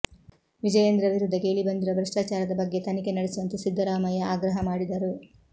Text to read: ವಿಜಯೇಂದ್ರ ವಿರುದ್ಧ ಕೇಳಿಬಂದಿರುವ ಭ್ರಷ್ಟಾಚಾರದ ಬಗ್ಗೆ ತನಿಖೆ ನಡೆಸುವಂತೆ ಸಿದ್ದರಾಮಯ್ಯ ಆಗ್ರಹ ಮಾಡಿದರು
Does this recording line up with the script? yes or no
yes